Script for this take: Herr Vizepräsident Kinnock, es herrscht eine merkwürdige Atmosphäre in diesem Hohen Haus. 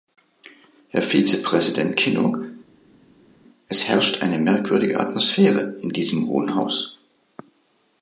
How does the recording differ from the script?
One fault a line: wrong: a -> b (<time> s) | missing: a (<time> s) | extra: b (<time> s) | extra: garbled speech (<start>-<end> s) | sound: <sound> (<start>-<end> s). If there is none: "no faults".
no faults